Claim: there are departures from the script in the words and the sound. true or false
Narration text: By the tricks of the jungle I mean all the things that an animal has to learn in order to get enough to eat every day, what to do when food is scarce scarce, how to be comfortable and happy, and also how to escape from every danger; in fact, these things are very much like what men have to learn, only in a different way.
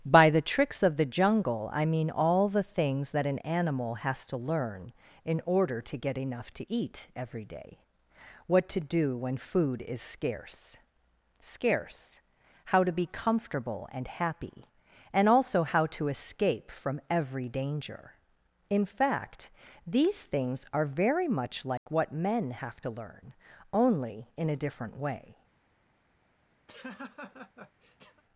true